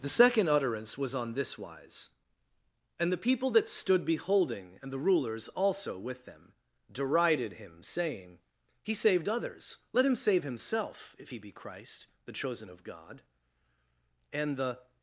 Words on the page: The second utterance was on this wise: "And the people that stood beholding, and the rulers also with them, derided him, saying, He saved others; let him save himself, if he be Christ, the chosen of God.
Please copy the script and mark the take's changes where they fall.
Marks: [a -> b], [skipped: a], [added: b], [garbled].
The second utterance was on this wise: "And the people that stood beholding, and the rulers also with them, derided him, saying, He saved others; let him save himself, if he be Christ, the chosen of God. [added: And the]